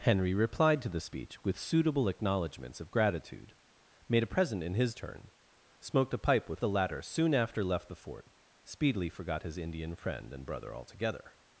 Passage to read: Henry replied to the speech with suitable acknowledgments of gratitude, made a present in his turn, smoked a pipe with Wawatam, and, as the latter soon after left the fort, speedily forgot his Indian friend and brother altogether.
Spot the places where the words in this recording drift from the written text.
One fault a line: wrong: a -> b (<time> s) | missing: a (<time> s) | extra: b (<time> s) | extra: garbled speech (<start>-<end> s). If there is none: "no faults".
missing: Wawatam and as (6.6 s)